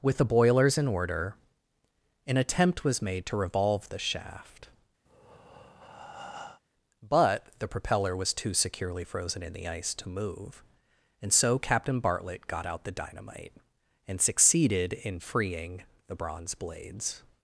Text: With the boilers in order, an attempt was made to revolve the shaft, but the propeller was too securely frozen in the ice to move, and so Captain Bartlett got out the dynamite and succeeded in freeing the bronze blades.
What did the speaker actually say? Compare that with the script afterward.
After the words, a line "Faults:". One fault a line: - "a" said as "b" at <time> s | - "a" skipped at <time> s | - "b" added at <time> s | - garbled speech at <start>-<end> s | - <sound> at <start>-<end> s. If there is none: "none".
With the boilers in order, an attempt was made to revolve the shaft, but the propeller was too securely frozen in the ice to move, and so Captain Bartlett got out the dynamite and succeeded in freeing the bronze blades.
Faults:
- breath at 5.1-6.6 s